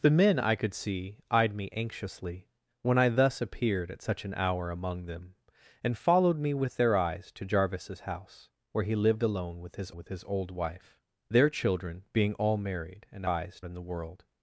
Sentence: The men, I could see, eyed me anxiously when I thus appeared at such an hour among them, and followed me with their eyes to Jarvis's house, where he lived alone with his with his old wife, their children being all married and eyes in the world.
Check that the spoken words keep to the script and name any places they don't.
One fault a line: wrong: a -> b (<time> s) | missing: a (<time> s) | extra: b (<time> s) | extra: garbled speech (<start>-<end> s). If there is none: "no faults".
no faults